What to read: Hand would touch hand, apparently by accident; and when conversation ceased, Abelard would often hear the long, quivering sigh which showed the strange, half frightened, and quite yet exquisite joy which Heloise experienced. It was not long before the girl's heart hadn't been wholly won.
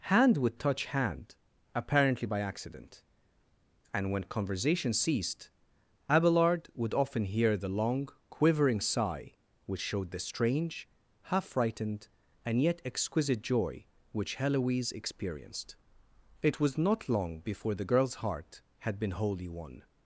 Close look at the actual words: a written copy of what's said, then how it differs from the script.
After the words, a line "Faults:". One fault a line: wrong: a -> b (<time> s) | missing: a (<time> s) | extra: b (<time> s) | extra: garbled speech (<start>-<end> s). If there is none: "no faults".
Hand would touch hand, apparently by accident; and when conversation ceased, Abelard would often hear the long, quivering sigh which showed the strange, half frightened, and yet exquisite joy which Heloise experienced. It was not long before the girl's heart had been wholly won.
Faults:
missing: quite (12.6 s)
wrong: hadn't -> had (18.8 s)